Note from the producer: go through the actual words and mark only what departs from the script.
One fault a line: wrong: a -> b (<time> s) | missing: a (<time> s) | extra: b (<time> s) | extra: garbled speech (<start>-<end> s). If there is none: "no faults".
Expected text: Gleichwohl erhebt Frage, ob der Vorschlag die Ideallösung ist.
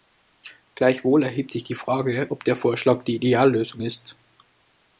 extra: sich die (1.5 s)